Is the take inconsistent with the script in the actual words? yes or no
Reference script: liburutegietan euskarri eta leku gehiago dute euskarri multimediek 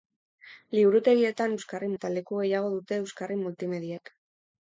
no